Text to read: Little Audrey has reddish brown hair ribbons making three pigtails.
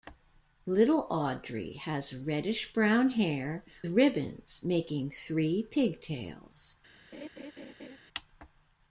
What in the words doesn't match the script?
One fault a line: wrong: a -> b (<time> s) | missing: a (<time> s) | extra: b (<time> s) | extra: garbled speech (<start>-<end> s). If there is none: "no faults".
no faults